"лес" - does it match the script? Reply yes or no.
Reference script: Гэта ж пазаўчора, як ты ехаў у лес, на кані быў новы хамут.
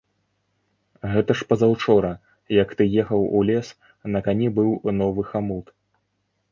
yes